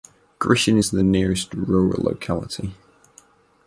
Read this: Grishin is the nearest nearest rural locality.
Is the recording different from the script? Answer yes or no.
yes